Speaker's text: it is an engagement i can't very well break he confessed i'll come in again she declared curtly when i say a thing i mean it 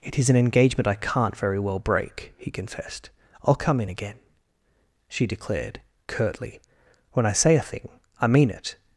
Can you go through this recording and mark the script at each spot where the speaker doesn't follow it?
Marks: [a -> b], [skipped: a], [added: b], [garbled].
it is an engagement i can't very well break he confessed i'll come in again she declared curtly when i say a thing i mean it